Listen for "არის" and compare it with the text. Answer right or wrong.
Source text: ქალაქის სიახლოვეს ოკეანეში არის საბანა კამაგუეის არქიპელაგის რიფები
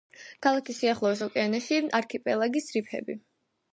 wrong